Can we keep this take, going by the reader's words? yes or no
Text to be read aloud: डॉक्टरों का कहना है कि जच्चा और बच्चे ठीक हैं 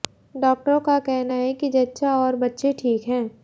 yes